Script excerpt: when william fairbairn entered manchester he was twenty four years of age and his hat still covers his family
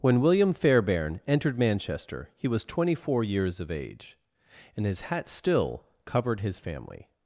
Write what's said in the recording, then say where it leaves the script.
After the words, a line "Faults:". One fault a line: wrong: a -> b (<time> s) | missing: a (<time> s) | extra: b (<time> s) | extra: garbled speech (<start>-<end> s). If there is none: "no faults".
when william fairbairn entered manchester he was twenty four years of age and his hat still covered his family
Faults:
wrong: covers -> covered (6.0 s)